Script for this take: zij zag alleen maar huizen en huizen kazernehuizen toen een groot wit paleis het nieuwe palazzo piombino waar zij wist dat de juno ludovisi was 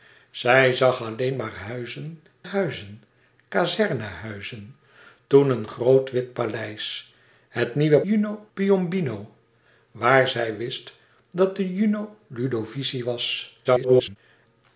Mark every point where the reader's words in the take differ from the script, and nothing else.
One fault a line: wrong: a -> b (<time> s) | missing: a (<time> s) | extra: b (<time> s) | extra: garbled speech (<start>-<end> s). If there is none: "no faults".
missing: en (2.2 s)
wrong: palazzo -> juno (8.0 s)
extra: garbled speech (13.6-14.2 s)